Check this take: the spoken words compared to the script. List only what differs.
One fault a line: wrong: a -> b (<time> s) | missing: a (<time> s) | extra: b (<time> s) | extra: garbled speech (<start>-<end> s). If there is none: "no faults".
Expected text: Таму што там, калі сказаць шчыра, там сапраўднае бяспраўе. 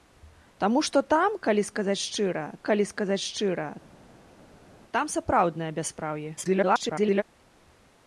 extra: калі сказаць шчыра (2.7 s)
extra: garbled speech (6.4-7.2 s)